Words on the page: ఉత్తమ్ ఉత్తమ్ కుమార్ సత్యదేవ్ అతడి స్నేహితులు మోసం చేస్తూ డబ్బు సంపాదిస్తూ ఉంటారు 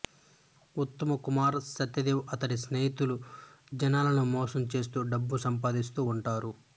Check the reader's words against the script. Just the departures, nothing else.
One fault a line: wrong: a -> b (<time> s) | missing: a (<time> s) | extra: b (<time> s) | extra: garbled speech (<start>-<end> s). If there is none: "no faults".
missing: ఉత్తమ్ (1.1 s)
extra: జనాలను (3.8 s)